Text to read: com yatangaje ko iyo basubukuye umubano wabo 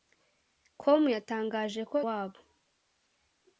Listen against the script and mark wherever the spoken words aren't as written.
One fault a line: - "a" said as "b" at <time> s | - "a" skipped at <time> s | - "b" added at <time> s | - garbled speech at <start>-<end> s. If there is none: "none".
- "iyo basubukuye umubano" skipped at 2.0 s